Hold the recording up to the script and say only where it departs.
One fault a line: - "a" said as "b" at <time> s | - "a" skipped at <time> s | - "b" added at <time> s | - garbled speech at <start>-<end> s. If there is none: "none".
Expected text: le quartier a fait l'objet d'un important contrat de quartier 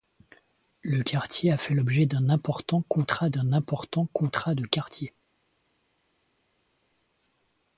- "d'un important contrat" added at 3.3 s